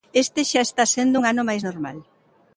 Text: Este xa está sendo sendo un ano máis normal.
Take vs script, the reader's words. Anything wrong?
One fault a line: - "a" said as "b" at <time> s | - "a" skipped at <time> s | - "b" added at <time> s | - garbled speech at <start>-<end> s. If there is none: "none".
- "sendo" skipped at 1.1 s